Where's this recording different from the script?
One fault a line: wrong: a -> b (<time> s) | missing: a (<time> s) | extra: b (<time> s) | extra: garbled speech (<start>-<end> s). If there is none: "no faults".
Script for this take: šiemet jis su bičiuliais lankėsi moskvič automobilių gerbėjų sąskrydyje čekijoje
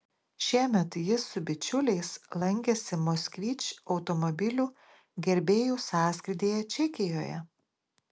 no faults